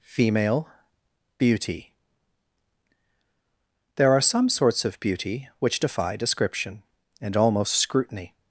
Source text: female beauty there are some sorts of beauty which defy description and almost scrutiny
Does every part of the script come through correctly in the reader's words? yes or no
yes